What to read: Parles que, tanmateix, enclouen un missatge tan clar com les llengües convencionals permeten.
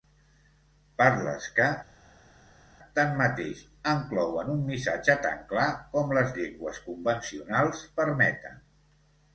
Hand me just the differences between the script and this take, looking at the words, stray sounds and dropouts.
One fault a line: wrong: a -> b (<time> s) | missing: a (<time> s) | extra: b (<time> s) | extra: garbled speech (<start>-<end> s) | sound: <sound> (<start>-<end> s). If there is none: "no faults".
no faults